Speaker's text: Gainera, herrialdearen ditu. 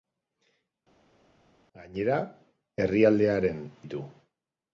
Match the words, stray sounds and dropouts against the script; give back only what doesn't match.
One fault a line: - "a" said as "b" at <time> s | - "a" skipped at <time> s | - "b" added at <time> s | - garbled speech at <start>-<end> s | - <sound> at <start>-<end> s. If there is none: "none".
none